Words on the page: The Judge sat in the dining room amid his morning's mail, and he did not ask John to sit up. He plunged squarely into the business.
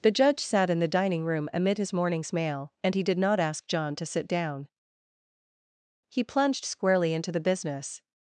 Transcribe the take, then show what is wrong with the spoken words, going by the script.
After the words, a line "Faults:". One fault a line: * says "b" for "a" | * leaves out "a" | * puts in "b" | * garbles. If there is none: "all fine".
The Judge sat in the dining room amid his morning's mail, and he did not ask John to sit down. He plunged squarely into the business.
Faults:
* says "down" for "up"